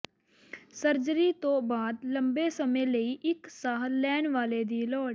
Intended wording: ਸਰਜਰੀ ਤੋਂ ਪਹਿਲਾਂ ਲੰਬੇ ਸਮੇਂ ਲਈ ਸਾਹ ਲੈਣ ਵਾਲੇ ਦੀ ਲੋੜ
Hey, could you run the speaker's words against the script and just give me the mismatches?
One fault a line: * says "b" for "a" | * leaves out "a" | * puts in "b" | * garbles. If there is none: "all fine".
* says "ਬਾਅਦ" for "ਪਹਿਲਾਂ"
* puts in "ਇੱਕ"